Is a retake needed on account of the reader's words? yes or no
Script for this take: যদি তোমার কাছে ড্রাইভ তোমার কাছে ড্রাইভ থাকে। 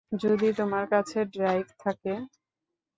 yes